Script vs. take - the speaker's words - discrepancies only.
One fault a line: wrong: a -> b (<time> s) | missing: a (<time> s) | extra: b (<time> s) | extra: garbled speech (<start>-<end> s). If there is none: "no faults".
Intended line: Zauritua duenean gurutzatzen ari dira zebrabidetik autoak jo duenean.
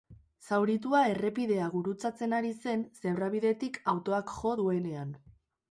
wrong: duenean -> errepidea (1.1 s)
wrong: dira -> zen (2.6 s)